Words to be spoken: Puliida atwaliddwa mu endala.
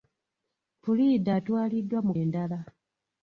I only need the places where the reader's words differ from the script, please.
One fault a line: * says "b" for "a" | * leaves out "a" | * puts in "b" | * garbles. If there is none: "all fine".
all fine